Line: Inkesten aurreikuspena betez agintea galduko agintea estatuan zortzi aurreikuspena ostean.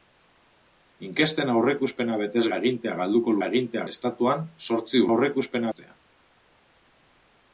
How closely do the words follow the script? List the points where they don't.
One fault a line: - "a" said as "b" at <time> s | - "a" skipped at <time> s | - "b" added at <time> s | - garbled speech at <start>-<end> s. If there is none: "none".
none